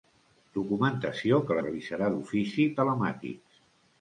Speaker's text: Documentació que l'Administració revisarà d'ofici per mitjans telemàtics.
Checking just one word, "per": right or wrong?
wrong